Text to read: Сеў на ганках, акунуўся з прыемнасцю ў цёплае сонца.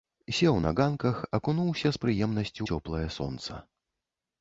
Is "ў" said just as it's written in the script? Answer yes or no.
no